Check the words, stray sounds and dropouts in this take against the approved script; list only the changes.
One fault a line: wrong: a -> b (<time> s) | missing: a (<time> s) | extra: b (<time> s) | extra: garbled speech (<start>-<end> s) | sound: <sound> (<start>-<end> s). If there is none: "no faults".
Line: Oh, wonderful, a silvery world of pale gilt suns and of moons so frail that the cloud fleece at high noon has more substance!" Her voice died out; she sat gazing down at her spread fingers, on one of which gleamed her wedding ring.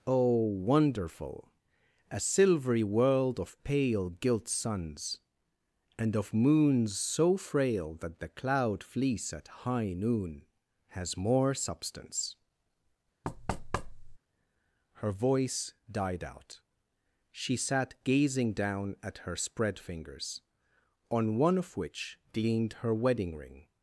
sound: thud (13.2-14.2 s)